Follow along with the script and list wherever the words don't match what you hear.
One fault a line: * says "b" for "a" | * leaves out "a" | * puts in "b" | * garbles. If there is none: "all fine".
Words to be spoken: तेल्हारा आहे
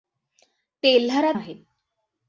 all fine